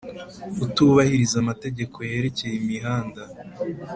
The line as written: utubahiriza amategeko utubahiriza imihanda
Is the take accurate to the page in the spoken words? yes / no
no